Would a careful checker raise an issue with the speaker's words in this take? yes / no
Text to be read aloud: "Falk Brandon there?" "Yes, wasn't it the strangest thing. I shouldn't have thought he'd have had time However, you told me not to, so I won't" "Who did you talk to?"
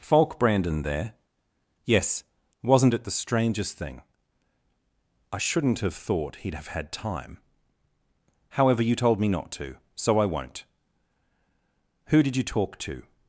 no